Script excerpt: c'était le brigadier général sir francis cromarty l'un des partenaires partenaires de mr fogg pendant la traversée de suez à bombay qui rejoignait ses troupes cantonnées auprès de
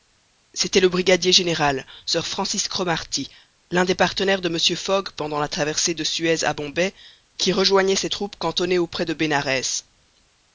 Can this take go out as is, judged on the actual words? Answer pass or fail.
fail